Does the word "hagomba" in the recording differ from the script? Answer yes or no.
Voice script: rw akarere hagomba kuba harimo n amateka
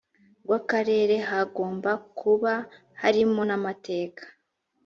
no